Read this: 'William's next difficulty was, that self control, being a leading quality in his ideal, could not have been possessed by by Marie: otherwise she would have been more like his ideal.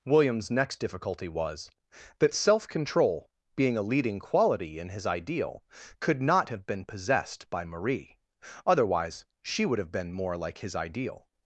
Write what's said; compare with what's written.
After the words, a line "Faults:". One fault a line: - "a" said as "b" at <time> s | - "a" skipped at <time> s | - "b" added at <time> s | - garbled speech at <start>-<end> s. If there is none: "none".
'William's next difficulty was, that self control, being a leading quality in his ideal, could not have been possessed by Marie: otherwise she would have been more like his ideal.
Faults:
- "by" skipped at 7.6 s